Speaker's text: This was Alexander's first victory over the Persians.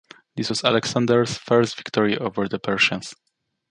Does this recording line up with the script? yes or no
yes